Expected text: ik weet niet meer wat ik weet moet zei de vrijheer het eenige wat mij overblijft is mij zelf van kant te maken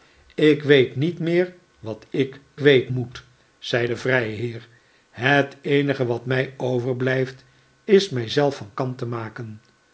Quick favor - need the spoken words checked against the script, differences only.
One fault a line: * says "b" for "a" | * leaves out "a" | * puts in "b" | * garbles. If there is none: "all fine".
all fine